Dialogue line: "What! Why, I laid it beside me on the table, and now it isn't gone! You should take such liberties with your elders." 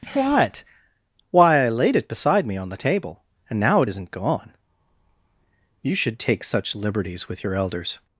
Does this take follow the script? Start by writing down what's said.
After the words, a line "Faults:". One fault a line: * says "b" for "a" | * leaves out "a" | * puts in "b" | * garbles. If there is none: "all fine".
"What! Why, I laid it beside me on the table, and now it isn't gone! You should take such liberties with your elders."
Faults:
all fine